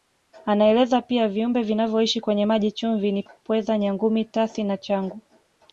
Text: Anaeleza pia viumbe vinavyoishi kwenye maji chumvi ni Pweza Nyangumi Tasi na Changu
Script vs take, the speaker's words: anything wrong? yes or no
no